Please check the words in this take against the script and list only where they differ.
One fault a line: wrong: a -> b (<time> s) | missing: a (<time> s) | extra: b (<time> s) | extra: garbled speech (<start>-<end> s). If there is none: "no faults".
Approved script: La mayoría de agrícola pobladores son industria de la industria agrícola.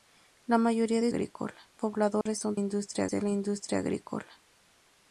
no faults